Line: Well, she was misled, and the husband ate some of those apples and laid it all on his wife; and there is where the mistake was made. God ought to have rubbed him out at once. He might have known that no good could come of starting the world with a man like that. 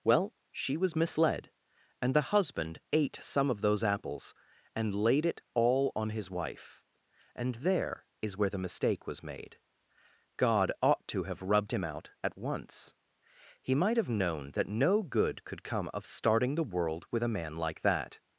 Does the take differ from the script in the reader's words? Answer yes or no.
no